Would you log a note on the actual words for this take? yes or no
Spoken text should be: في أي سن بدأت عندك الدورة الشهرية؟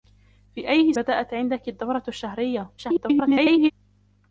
yes